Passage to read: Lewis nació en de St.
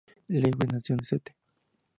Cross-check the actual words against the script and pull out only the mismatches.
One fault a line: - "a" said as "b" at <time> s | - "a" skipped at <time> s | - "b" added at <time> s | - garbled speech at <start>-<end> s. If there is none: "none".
none